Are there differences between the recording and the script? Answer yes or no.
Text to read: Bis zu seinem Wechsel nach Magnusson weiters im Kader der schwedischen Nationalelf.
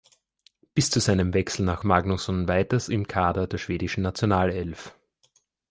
no